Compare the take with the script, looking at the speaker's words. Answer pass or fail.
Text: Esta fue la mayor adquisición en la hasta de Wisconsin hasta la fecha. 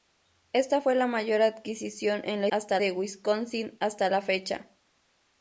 pass